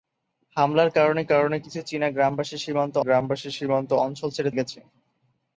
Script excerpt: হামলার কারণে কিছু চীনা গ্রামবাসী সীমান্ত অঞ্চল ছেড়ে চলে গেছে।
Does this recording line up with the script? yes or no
no